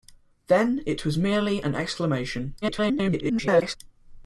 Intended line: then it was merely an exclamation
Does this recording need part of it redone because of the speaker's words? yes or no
yes